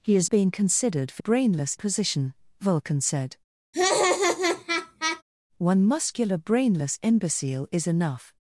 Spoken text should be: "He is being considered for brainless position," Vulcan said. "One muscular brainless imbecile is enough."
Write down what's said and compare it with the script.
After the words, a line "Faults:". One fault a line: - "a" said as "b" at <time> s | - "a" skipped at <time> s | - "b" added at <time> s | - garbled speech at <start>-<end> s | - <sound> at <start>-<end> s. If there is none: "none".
"He is being considered for brainless position," Vulcan said. "One muscular brainless imbecile is enough."
Faults:
- laugh at 3.7-5.2 s